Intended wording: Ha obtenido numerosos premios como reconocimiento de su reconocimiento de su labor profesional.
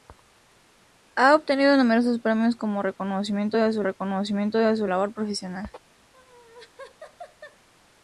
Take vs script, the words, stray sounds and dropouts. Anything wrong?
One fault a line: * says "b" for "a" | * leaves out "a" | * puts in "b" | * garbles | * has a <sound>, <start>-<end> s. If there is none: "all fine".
* has a laugh, 6.1-7.7 s